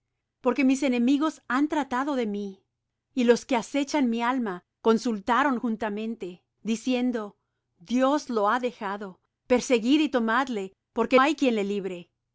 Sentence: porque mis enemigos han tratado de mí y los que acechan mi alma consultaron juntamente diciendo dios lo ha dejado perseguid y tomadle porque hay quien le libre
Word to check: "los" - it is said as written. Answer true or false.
true